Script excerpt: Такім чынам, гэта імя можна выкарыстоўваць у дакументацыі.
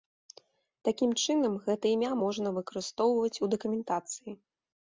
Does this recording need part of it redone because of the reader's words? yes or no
no